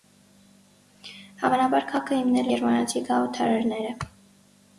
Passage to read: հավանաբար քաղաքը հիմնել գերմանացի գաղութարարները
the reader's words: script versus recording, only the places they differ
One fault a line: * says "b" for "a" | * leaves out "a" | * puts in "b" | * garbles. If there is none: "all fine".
all fine